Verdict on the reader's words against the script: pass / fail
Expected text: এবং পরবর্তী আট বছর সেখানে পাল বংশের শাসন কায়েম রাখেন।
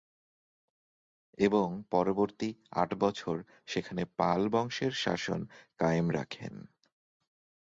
pass